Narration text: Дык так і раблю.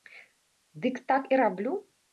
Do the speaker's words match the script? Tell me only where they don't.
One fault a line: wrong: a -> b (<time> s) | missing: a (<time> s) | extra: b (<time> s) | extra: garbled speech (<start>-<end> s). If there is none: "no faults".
no faults